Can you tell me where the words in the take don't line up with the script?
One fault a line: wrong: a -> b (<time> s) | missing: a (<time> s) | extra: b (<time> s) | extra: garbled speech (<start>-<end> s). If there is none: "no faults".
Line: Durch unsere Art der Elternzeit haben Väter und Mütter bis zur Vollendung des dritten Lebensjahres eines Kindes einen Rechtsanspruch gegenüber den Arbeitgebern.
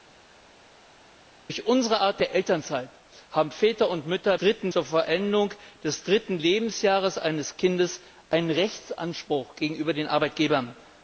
wrong: bis -> dritten (4.4 s)